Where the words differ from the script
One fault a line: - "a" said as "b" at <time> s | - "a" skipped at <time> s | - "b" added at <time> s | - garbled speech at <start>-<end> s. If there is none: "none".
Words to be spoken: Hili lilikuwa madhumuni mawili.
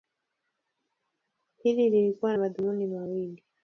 none